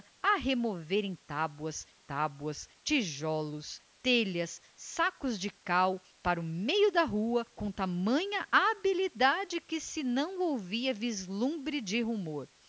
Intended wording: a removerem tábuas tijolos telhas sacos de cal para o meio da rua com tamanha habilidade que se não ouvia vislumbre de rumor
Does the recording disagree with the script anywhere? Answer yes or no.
yes